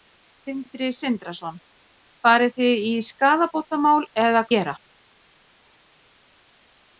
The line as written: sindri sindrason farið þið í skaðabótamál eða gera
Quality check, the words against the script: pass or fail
pass